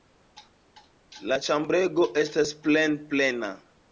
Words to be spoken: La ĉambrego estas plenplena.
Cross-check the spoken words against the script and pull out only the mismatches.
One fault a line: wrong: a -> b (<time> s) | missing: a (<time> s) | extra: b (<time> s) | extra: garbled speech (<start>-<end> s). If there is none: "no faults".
no faults